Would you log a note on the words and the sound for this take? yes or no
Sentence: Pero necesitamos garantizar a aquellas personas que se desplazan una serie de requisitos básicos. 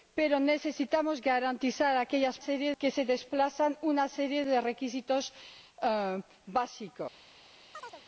yes